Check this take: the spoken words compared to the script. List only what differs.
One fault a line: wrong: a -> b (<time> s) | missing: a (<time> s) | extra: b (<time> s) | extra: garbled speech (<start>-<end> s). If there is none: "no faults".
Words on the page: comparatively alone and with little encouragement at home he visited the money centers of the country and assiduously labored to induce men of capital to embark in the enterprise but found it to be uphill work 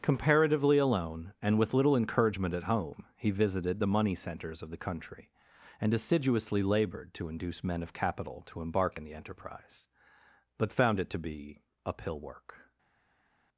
no faults